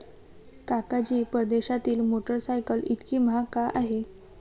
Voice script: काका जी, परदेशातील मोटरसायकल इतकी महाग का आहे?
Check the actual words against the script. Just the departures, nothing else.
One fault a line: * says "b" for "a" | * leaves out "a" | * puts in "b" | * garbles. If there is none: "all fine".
all fine